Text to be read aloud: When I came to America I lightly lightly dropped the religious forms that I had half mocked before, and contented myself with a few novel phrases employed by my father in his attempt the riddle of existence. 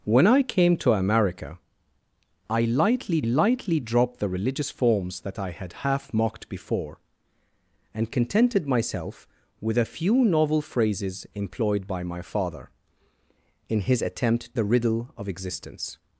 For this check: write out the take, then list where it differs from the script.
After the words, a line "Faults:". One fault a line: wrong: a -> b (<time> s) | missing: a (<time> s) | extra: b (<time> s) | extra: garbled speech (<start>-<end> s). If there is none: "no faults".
When I came to America I lightly lightly dropped the religious forms that I had half mocked before, and contented myself with a few novel phrases employed by my father in his attempt the riddle of existence.
Faults:
no faults